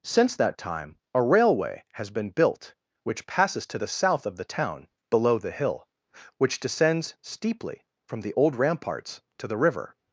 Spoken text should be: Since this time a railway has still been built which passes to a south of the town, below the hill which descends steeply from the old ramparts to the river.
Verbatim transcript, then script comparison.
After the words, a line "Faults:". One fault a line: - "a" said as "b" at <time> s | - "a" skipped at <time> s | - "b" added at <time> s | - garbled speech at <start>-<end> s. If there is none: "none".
Since that time a railway has been built which passes to the south of the town, below the hill which descends steeply from the old ramparts to the river.
Faults:
- "this" said as "that" at 0.3 s
- "still" skipped at 2.1 s
- "a" said as "the" at 3.7 s